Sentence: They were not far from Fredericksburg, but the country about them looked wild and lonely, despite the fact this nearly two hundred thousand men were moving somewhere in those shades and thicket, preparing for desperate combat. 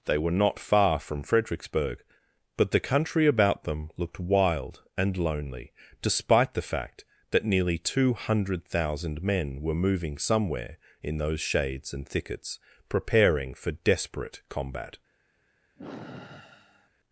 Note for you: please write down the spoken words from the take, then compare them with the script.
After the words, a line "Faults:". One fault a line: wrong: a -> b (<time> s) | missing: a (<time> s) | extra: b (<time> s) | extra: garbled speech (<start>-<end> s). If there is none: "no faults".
They were not far from Fredericksburg, but the country about them looked wild and lonely, despite the fact that nearly two hundred thousand men were moving somewhere in those shades and thickets, preparing for desperate combat.
Faults:
wrong: this -> that (7.3 s)
wrong: thicket -> thickets (12.1 s)